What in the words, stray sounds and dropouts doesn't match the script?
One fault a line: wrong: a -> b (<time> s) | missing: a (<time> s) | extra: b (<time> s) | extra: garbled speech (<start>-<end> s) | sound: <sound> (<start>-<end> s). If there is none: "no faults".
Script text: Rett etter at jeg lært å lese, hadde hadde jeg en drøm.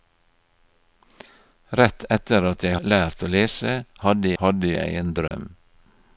sound: dropout (5.3-5.3 s)